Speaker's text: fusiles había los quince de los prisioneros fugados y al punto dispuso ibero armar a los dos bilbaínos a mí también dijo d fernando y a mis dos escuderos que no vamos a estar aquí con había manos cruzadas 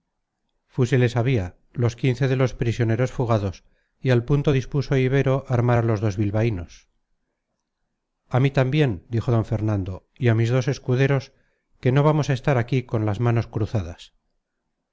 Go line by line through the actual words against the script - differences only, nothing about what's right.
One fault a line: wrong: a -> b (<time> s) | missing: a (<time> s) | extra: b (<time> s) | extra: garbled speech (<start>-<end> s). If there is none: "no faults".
wrong: había -> las (13.1 s)